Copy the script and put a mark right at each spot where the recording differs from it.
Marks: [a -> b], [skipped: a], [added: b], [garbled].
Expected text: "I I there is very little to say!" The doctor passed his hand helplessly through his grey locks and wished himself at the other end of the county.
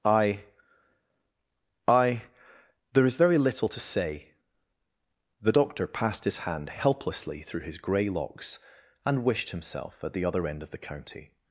"I I there is very little to say!" The doctor passed his hand helplessly through his grey locks and wished himself at the other end of the county.